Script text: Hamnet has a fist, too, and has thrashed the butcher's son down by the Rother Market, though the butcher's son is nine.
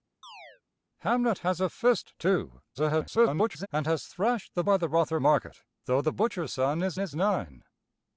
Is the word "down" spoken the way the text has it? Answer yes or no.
no